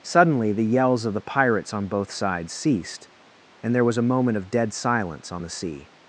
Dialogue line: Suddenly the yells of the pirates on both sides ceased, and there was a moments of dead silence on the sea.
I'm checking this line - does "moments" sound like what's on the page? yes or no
no